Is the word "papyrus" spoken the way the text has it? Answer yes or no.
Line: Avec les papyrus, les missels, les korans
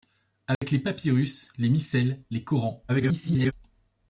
yes